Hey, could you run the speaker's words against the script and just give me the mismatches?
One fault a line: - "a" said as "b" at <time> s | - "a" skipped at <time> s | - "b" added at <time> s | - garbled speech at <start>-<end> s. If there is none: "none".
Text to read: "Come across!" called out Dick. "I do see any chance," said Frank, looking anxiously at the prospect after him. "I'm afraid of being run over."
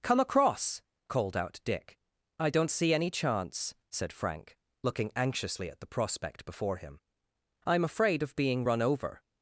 - "do" said as "don't" at 2.5 s
- "after" said as "before" at 6.5 s